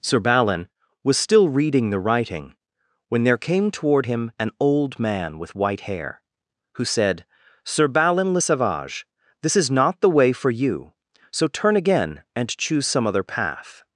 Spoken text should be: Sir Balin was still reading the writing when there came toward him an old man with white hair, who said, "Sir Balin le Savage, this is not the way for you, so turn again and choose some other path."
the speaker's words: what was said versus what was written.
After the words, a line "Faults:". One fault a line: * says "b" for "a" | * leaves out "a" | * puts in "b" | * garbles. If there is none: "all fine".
Sir Balin was still reading the writing when there came toward him an old man with white hair, who said, "Sir Balin le Savage, this is not the way for you, so turn again and choose some other path."
Faults:
all fine